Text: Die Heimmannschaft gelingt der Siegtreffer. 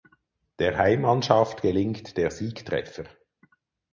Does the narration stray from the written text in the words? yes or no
yes